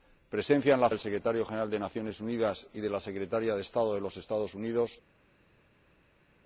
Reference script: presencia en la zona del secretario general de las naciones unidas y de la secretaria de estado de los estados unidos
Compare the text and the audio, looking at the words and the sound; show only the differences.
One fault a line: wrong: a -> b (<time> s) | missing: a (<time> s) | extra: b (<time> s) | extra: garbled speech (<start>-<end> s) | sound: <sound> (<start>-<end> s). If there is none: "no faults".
missing: zona (0.9 s)